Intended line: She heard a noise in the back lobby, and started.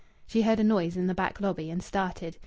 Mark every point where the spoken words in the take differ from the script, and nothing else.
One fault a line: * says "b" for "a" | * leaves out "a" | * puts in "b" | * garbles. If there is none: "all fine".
all fine